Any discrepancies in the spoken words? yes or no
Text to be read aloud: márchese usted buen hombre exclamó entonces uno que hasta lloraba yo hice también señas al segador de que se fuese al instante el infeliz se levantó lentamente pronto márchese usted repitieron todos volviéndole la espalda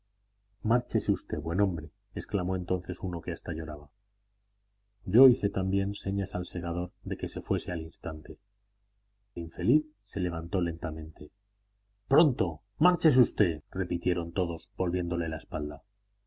yes